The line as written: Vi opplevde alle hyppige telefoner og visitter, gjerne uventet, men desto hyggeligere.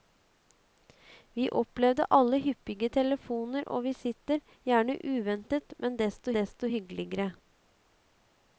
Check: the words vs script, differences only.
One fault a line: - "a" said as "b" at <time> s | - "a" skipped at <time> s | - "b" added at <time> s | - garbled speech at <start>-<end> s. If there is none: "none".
- "desto" added at 6.3 s